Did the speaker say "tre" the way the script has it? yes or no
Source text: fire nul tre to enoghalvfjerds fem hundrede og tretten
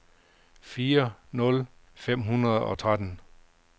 no